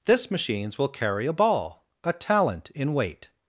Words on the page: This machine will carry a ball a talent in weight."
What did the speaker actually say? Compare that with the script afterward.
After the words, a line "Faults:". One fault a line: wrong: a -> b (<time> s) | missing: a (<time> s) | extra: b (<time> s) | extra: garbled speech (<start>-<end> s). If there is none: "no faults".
This machines will carry a ball a talent in weight."
Faults:
wrong: machine -> machines (0.3 s)